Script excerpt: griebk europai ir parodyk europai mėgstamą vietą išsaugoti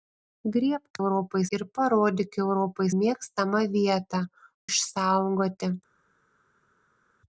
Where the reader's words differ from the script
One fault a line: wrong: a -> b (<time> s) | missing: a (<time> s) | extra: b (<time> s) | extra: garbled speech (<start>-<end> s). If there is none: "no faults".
no faults